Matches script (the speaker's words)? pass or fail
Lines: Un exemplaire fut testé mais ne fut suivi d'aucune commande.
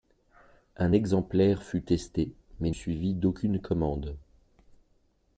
fail